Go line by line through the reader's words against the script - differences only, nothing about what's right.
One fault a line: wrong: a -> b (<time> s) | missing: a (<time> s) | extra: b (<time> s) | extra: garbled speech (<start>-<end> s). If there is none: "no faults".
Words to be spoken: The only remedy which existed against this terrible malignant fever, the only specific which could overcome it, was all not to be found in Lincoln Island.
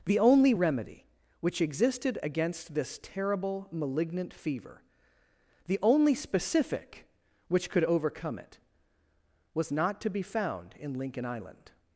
missing: all (9.7 s)